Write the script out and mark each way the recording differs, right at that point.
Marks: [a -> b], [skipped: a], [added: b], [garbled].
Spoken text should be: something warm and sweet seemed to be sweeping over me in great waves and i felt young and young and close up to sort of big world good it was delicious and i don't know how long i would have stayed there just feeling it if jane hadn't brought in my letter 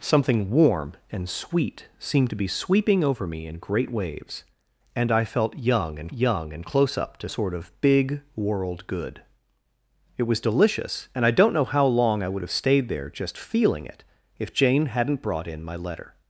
something warm and sweet seemed to be sweeping over me in great waves and i felt young and young and close up to sort of big world good it was delicious and i don't know how long i would have stayed there just feeling it if jane hadn't brought in my letter